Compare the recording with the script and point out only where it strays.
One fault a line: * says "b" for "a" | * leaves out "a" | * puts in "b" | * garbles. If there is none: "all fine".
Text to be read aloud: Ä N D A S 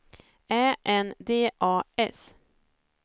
all fine